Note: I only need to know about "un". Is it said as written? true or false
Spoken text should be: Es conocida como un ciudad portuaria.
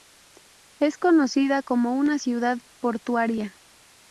false